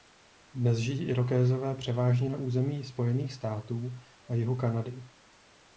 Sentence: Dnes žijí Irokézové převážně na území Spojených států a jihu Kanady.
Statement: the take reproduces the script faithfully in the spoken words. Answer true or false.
true